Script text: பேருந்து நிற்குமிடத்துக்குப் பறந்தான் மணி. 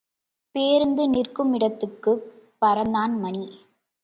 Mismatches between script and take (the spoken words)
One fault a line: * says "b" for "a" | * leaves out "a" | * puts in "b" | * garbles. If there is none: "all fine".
all fine